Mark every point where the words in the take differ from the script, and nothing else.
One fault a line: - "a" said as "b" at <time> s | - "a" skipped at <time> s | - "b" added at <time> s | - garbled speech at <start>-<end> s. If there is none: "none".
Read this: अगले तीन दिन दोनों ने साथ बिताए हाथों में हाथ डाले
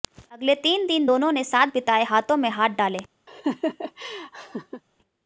none